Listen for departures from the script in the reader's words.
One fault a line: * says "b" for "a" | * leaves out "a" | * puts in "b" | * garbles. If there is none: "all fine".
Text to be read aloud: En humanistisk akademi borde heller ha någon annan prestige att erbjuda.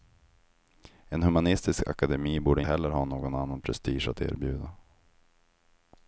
all fine